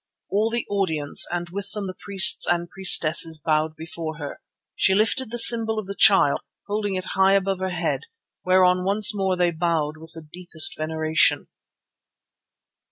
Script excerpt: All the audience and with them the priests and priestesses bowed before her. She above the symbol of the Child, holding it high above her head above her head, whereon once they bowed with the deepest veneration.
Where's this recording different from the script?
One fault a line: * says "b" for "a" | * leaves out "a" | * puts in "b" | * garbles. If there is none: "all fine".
* says "lifted" for "above"
* leaves out "above her head"
* puts in "more"